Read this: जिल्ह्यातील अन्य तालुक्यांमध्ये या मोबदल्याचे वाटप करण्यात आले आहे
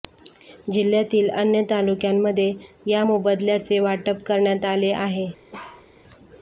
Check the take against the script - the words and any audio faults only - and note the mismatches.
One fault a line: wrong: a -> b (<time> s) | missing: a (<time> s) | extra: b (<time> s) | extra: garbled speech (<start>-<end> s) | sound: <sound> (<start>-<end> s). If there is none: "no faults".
sound: bark (5.5-5.9 s)